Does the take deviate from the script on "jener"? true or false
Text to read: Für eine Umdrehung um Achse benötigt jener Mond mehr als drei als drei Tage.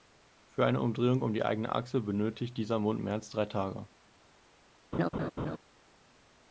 true